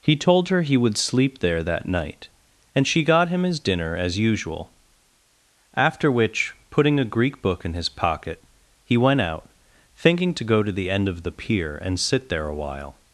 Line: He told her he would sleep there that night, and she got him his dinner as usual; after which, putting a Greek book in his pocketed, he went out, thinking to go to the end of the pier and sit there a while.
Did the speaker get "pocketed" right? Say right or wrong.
wrong